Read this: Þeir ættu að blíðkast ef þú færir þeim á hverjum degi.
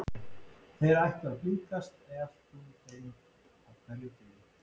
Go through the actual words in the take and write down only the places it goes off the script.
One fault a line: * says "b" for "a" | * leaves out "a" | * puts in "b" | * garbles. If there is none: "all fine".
* leaves out "færir"